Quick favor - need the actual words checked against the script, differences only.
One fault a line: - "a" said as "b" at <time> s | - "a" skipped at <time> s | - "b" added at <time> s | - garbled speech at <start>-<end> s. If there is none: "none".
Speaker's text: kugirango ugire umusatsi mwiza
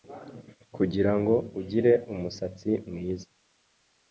none